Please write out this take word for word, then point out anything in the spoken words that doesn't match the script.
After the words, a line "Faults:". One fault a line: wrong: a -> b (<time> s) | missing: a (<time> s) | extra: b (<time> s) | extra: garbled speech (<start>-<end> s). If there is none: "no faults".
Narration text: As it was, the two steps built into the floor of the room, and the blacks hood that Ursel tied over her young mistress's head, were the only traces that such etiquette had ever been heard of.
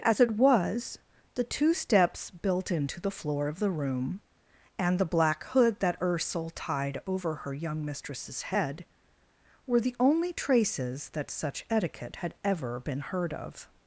As it was, the two steps built into the floor of the room, and the black hood that Ursel tied over her young mistress's head, were the only traces that such etiquette had ever been heard of.
Faults:
wrong: blacks -> black (5.0 s)